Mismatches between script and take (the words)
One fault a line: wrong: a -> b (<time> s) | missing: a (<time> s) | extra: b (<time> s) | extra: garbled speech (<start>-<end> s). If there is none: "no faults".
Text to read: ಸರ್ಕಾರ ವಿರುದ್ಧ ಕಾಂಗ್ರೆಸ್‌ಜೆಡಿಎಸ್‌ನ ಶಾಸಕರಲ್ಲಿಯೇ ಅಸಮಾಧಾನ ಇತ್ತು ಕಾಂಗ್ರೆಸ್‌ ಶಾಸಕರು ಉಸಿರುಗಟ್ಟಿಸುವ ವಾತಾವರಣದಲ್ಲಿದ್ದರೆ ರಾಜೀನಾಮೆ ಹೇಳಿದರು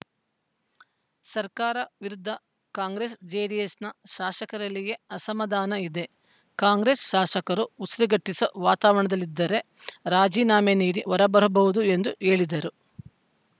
wrong: ಇತ್ತು -> ಇದೆ (5.8 s)
extra: ನೀಡಿ ಹೊರಬರಬಹುದು ಎಂದು (10.8 s)